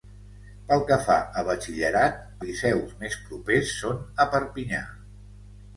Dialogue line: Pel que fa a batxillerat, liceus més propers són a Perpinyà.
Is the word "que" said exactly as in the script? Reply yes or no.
yes